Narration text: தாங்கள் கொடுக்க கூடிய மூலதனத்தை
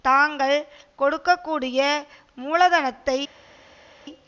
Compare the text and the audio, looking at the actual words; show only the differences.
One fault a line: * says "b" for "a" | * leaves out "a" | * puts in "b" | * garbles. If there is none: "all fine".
all fine